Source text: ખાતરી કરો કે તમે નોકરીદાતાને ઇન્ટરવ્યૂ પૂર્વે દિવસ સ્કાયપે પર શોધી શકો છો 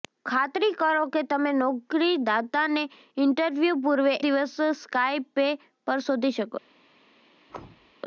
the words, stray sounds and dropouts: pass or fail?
fail